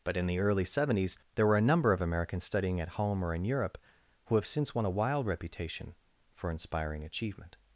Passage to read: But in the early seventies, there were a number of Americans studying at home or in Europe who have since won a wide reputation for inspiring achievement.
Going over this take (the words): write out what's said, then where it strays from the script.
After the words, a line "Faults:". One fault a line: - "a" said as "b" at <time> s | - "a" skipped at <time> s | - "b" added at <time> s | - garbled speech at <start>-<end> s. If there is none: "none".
But in the early seventies, there were a number of Americans studying at home or in Europe who have since won a wild reputation for inspiring achievement.
Faults:
- "wide" said as "wild" at 4.9 s